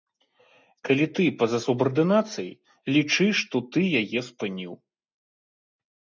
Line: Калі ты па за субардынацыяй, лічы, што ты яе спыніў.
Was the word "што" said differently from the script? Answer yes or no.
no